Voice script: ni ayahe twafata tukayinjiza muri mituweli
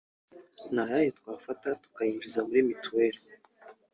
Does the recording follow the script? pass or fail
pass